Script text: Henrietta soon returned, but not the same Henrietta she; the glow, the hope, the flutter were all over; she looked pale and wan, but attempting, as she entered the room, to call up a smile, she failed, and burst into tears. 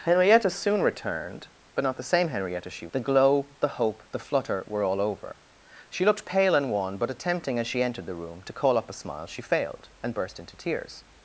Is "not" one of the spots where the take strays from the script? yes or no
no